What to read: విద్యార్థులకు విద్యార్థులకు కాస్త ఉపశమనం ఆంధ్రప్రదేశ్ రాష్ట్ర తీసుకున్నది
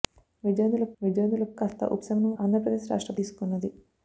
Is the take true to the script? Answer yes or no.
yes